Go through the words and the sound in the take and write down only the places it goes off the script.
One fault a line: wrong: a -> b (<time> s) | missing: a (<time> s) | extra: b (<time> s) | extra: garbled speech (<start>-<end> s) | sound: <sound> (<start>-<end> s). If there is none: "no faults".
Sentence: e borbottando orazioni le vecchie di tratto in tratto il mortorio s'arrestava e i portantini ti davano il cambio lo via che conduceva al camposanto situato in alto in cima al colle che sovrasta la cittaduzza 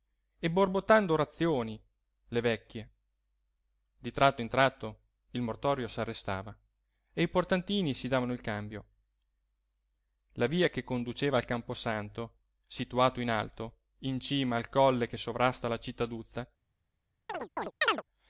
wrong: ti -> si (7.9 s)
wrong: lo -> la (10.3 s)
sound: chirp (17.3-18.0 s)